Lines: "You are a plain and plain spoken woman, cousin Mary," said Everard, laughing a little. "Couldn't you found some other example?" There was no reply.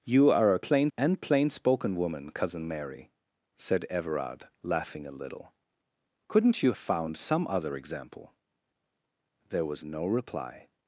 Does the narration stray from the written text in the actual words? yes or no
no